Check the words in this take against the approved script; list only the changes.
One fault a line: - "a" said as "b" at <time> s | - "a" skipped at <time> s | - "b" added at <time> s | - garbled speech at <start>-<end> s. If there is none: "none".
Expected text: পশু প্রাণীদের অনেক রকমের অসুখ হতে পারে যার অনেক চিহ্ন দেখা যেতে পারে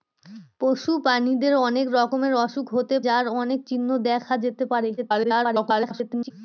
- "পারে" skipped at 3.0 s
- garbled speech at 5.0-6.3 s